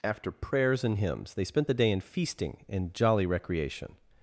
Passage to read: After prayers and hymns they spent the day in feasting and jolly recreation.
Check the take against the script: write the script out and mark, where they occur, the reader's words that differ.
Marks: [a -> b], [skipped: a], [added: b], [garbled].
After prayers and hymns they spent the day in feasting and jolly recreation.